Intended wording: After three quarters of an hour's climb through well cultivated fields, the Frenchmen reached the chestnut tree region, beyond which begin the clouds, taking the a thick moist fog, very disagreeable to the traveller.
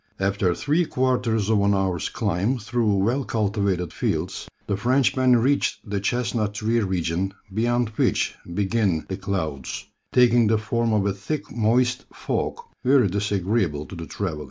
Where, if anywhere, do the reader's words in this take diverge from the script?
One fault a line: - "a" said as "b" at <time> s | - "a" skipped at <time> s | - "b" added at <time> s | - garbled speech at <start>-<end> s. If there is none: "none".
- "form of" added at 10.6 s